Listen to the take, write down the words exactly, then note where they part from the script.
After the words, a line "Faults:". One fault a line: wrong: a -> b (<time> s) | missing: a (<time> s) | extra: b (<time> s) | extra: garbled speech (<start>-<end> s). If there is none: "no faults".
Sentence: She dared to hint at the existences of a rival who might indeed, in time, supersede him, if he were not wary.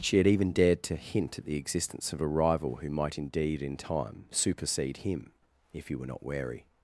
She had even dared to hint at the existence of a rival who might indeed, in time, supersede him, if he were not wary.
Faults:
extra: had even (0.2 s)
wrong: existences -> existence (1.6 s)